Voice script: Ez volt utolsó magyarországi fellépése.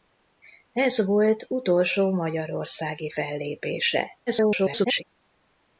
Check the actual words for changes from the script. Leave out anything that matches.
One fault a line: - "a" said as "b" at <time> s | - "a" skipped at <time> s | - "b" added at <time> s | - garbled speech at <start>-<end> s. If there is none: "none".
- garbled speech at 4.3-5.0 s